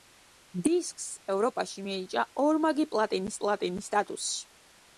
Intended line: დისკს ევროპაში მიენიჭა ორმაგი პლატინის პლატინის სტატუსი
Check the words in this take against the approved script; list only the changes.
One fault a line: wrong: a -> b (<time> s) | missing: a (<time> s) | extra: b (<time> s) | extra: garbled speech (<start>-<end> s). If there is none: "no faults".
no faults